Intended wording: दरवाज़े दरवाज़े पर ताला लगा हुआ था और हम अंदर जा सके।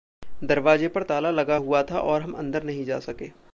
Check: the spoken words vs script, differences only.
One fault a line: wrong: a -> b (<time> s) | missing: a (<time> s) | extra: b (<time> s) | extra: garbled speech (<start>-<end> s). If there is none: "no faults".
missing: दरवाज़े (0.9 s)
extra: नहीं (2.6 s)